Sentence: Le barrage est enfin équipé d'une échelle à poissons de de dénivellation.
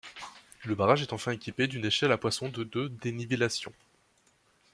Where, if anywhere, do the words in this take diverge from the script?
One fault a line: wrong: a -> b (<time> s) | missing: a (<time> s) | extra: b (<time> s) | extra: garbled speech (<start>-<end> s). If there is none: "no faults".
no faults